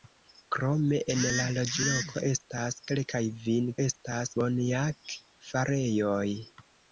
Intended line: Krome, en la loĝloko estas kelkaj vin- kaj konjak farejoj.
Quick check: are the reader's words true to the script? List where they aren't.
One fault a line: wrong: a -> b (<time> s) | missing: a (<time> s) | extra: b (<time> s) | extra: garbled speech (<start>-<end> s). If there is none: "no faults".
wrong: kaj -> estas (3.8 s)